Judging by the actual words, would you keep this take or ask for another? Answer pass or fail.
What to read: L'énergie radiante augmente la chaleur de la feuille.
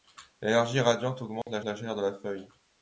fail